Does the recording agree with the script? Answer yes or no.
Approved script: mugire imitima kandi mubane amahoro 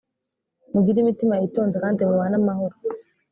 no